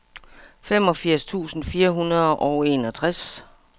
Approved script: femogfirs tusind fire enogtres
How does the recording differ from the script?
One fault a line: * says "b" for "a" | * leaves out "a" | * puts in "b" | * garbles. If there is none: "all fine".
* puts in "hundrede og"